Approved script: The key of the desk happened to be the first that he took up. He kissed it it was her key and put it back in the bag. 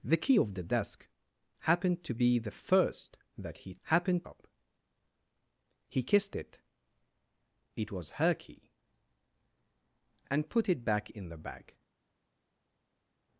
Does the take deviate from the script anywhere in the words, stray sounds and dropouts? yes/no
yes